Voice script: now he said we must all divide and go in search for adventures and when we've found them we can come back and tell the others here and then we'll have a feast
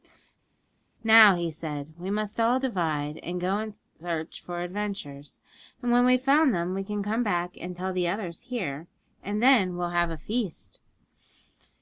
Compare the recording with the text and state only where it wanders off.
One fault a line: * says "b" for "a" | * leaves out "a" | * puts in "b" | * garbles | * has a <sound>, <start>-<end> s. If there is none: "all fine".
all fine